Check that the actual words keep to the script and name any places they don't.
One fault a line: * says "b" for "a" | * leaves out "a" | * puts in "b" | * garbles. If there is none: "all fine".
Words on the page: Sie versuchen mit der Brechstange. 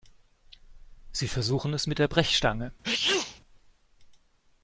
* puts in "es"